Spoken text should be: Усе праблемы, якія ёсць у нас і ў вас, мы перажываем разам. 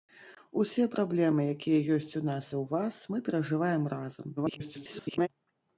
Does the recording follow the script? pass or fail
fail